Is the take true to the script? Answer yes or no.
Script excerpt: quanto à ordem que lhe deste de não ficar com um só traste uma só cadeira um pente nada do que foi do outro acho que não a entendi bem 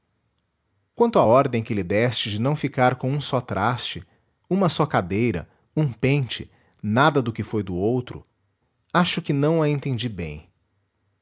yes